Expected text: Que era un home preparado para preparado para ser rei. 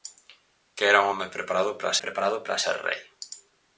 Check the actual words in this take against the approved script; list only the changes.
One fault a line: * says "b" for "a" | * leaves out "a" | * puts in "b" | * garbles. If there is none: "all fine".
all fine